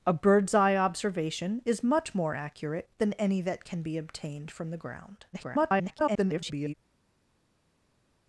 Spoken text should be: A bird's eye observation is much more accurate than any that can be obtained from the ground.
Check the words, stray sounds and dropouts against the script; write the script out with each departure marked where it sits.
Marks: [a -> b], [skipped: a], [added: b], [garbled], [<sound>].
A bird's eye observation is much more accurate than any that can be obtained from the ground. [garbled]